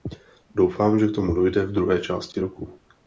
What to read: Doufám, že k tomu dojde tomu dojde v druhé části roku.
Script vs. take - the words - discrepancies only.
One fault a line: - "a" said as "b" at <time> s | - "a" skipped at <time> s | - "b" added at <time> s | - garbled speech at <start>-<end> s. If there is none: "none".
- "tomu dojde" skipped at 1.6 s